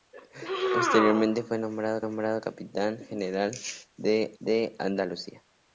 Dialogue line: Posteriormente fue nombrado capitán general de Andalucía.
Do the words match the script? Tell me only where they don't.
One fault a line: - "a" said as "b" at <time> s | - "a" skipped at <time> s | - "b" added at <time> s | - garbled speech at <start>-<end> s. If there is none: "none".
- "nombrado" added at 2.0 s
- "de" added at 4.4 s